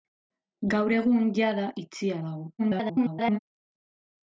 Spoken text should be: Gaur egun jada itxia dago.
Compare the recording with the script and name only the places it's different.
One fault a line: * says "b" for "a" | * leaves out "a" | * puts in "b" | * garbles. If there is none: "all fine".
* garbles